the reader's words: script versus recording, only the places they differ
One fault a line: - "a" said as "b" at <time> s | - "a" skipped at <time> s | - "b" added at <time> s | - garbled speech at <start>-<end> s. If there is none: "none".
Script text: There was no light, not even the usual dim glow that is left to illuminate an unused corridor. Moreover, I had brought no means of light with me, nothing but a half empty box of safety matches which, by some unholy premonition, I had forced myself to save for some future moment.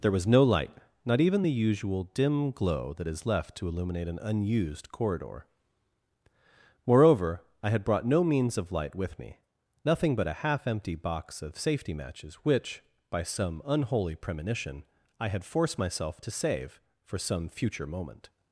none